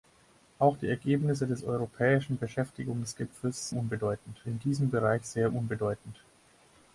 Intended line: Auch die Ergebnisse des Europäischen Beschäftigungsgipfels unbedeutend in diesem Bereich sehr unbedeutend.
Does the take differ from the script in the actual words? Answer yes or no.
no